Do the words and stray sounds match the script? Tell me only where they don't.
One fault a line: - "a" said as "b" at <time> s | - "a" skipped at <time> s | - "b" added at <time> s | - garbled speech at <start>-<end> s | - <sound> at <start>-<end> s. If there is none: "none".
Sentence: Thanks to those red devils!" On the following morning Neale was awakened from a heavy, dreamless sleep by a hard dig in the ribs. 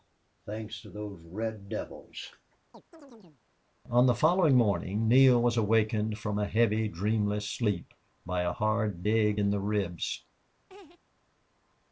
- chirp at 2.7-3.4 s
- laugh at 10.7-11.0 s